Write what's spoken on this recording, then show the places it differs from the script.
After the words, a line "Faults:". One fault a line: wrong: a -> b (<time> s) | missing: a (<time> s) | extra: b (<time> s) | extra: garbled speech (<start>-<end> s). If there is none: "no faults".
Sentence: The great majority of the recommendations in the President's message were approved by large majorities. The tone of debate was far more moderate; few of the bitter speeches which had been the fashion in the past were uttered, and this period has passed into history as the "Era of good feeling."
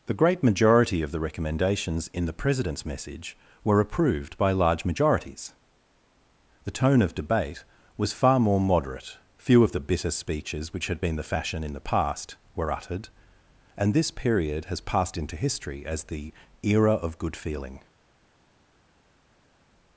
The great majority of the recommendations in the President's message were approved by large majorities. The tone of debate was far more moderate; few of the bitter speeches which had been the fashion in the past were uttered, and this period has passed into history as the "Era of good feeling."
Faults:
no faults